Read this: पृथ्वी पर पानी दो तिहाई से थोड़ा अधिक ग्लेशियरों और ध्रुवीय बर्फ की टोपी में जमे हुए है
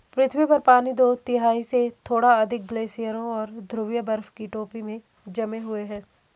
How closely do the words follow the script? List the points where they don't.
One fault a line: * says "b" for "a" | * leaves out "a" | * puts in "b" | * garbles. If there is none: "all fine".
all fine